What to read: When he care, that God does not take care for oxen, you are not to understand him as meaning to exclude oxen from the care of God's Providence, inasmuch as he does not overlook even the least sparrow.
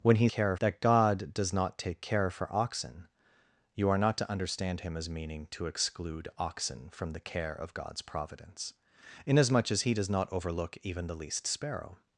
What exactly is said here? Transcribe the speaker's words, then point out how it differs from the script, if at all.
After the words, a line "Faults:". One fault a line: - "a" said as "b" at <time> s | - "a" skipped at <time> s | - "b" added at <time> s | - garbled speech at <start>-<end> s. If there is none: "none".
When he care, that God does not take care for oxen, you are not to understand him as meaning to exclude oxen from the care of God's Providence, inasmuch as he does not overlook even the least sparrow.
Faults:
none